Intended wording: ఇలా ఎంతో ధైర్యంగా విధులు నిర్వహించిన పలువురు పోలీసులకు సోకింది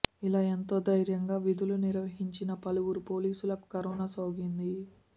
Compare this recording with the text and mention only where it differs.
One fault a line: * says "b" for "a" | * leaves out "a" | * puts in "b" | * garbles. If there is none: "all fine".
* puts in "కరోనా"